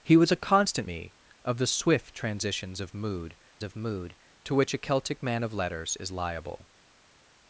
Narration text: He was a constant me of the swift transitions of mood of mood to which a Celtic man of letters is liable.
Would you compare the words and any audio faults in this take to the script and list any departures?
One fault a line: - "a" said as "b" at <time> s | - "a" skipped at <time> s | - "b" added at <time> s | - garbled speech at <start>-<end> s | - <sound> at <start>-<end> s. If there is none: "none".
none